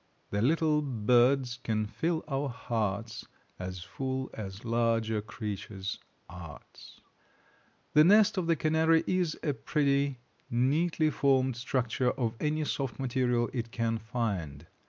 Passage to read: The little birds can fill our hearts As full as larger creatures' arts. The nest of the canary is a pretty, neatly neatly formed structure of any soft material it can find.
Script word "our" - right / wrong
right